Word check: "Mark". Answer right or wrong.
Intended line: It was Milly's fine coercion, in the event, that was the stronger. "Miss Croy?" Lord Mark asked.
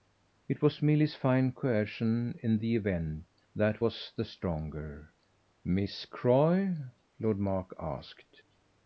right